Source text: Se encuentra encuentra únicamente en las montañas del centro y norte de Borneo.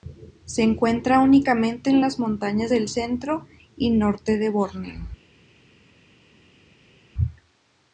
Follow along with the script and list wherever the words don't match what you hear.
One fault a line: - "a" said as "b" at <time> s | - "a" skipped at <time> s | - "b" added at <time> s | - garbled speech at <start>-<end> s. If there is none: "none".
- "encuentra" skipped at 1.2 s